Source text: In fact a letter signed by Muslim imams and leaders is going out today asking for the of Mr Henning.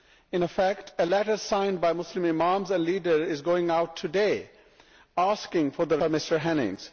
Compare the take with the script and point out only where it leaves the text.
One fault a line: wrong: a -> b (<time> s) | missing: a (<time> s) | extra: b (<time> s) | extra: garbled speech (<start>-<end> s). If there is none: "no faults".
no faults